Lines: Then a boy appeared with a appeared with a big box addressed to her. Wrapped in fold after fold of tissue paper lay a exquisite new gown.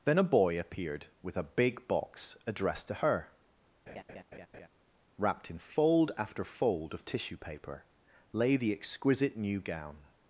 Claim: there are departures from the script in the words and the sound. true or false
true